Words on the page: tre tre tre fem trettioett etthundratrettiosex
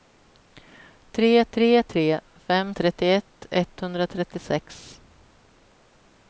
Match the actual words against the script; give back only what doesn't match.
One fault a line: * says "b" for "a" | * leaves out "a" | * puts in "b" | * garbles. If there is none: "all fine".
all fine